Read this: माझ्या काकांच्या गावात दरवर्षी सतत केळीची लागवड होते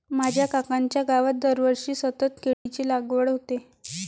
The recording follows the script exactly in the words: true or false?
true